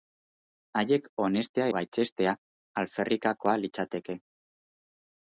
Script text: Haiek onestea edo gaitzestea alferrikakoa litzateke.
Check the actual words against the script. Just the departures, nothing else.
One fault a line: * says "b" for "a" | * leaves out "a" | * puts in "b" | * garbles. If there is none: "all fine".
* leaves out "edo"